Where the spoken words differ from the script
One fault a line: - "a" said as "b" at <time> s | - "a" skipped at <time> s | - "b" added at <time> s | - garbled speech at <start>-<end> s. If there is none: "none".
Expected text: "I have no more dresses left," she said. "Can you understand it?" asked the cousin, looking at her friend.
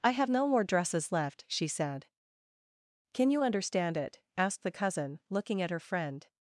none